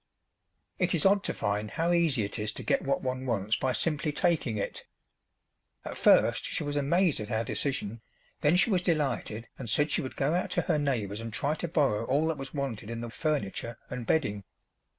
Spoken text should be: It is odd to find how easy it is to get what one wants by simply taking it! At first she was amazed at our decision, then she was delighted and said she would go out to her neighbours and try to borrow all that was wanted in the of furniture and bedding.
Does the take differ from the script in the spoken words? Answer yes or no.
no